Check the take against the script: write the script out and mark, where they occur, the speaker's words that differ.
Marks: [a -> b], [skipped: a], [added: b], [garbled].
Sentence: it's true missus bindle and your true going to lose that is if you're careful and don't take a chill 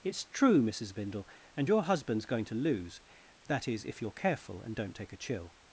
it's true missus bindle and your [true -> husband's] going to lose that is if you're careful and don't take a chill